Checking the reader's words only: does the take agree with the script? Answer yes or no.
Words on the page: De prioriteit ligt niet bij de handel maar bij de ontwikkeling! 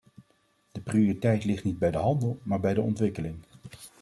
yes